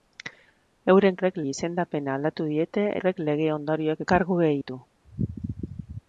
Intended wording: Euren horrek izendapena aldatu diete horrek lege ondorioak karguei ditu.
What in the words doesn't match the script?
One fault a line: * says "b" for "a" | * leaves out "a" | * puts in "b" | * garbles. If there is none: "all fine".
all fine